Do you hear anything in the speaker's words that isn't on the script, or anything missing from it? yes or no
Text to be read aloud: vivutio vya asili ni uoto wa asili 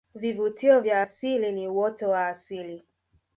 no